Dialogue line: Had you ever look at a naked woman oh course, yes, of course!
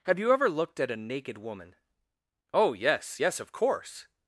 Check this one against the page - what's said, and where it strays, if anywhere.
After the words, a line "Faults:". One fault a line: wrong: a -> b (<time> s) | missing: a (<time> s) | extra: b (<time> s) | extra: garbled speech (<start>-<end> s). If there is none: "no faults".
Have you ever looked at a naked woman oh yes, yes, of course!
Faults:
wrong: Had -> Have (0.1 s)
wrong: look -> looked (0.5 s)
wrong: course -> yes (2.7 s)